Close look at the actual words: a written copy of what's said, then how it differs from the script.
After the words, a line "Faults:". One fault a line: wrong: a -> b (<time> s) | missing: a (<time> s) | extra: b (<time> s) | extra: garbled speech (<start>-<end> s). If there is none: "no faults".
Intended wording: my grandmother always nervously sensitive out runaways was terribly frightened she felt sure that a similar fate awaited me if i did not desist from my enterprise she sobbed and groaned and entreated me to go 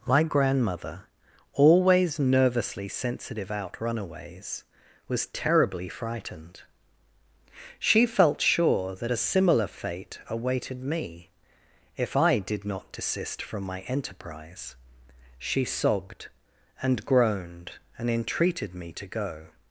my grandmother always nervously sensitive out runaways was terribly frightened she felt sure that a similar fate awaited me if i did not desist from my enterprise she sobbed and groaned and entreated me to go
Faults:
no faults